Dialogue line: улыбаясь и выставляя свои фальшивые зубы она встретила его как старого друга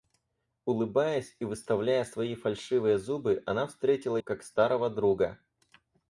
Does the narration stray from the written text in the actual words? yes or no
yes